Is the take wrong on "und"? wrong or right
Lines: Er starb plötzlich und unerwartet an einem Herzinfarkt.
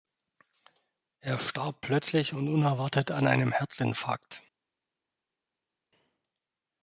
right